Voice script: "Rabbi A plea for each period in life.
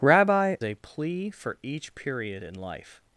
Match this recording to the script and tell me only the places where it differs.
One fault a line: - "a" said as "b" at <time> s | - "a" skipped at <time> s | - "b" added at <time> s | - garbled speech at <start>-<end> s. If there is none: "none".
none